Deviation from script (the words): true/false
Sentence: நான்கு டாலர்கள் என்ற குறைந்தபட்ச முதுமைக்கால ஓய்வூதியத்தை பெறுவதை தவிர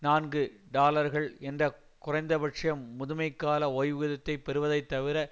false